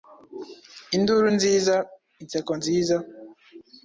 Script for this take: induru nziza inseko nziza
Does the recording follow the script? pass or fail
pass